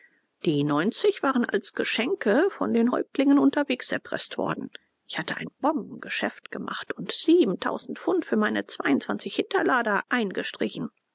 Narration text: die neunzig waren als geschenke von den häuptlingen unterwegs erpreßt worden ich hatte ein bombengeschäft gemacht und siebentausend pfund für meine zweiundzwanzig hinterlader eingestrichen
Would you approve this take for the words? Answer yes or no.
yes